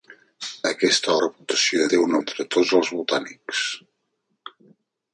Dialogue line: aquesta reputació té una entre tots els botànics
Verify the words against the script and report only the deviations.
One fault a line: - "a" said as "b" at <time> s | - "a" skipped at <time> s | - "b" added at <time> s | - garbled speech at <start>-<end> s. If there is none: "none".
none